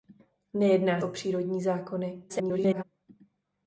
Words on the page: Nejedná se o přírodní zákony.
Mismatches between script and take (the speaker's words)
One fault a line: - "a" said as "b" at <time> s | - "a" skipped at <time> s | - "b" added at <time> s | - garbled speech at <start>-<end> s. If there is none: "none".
- "se" skipped at 1.0 s
- garbled speech at 2.3-2.8 s